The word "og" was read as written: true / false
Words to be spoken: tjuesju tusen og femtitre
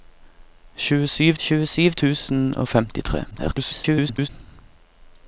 true